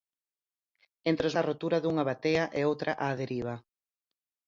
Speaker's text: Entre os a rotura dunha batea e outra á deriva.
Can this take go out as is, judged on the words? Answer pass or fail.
pass